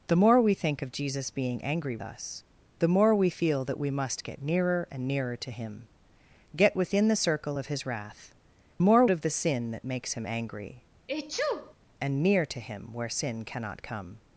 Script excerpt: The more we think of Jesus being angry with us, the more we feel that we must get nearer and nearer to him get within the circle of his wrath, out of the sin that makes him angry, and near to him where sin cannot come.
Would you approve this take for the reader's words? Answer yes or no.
no